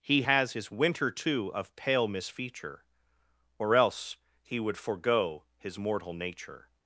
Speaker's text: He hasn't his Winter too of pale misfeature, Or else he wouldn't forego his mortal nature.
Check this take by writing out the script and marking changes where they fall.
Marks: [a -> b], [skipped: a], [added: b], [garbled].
He [hasn't -> has] his Winter too of pale misfeature, Or else he [wouldn't -> would] forego his mortal nature.